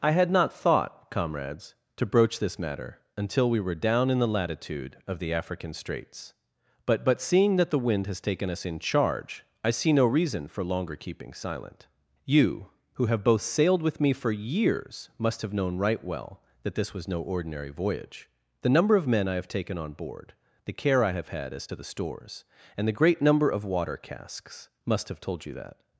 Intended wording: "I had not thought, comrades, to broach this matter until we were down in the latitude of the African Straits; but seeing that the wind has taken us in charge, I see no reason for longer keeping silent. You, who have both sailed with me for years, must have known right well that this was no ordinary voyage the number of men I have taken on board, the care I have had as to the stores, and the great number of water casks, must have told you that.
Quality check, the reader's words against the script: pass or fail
fail